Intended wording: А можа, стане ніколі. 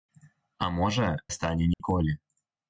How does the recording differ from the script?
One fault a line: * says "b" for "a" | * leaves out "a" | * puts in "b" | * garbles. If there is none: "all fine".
all fine